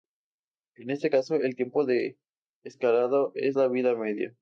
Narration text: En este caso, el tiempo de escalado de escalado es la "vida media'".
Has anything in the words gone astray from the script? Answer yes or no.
yes